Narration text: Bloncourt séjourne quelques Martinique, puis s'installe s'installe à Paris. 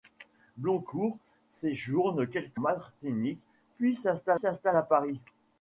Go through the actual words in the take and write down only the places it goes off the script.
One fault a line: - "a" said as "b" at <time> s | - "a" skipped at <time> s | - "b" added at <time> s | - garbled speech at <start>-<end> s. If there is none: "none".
none